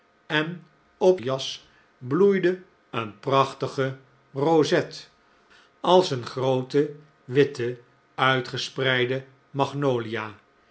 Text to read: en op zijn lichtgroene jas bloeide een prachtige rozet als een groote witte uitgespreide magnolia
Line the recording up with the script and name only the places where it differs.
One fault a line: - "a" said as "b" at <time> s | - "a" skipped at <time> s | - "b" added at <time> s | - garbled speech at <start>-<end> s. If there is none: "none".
- "zijn lichtgroene" skipped at 1.2 s